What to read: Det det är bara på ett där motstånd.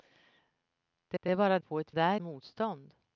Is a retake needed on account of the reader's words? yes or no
no